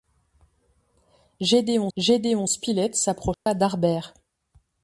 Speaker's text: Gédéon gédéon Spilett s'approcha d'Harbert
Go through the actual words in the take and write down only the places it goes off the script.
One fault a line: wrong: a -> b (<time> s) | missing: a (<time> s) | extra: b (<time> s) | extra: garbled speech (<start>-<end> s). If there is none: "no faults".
no faults